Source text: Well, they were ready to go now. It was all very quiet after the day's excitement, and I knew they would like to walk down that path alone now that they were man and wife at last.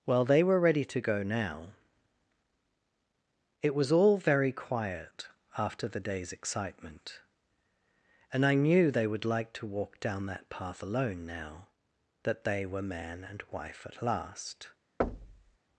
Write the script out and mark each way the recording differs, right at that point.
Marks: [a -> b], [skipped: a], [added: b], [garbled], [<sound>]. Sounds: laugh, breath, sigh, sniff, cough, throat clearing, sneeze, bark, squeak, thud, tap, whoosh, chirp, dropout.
Well, they were ready to go now. It was all very quiet after the day's excitement, and I knew they would like to walk down that path alone now that they were man and wife at last. [thud]